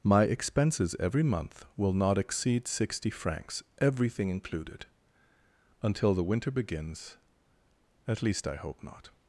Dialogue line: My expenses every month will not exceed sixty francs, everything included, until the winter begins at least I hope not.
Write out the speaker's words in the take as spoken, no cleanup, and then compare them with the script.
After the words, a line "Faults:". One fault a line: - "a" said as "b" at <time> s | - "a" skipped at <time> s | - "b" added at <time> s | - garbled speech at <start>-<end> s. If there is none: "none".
My expenses every month will not exceed sixty francs, everything included, until the winter begins at least I hope not.
Faults:
none